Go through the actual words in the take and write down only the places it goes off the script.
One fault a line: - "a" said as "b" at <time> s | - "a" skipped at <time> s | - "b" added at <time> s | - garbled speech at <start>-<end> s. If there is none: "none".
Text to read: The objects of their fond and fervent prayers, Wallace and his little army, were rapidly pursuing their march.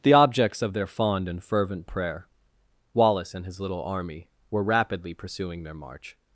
- "prayers" said as "prayer" at 1.9 s